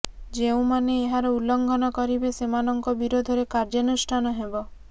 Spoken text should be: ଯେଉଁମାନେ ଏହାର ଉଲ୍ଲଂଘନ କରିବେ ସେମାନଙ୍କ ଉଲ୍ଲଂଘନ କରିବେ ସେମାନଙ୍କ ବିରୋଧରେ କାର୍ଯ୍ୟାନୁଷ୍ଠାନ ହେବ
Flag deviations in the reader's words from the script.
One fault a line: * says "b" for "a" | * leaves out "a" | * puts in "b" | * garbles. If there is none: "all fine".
* leaves out "ଉଲ୍ଲଂଘନ କରିବେ ସେମାନଙ୍କ"